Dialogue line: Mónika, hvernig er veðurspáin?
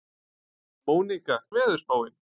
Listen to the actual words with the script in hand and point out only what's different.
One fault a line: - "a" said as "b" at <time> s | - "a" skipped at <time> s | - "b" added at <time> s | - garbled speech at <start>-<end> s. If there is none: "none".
- "hvernig" skipped at 1.4 s